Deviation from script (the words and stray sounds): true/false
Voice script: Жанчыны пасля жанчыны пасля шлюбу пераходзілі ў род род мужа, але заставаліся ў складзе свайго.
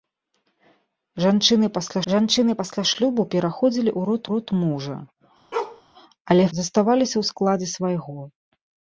true